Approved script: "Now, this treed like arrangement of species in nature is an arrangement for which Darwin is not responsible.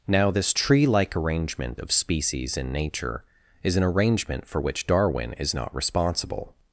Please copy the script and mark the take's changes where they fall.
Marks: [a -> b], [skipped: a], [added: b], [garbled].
"Now, this [treed -> tree] like arrangement of species in nature is an arrangement for which Darwin is not responsible.